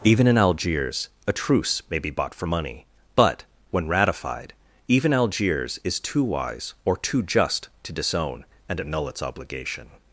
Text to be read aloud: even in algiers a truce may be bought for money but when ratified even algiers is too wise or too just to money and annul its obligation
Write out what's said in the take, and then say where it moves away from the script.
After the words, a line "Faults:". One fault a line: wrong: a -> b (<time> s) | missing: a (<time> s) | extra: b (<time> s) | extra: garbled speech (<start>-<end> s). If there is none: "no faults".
even in algiers a truce may be bought for money but when ratified even algiers is too wise or too just to disown and annul its obligation
Faults:
wrong: money -> disown (7.9 s)